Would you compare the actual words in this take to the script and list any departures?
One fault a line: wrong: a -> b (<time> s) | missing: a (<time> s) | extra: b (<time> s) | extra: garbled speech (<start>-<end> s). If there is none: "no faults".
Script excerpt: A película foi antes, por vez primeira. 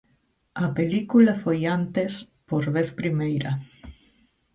no faults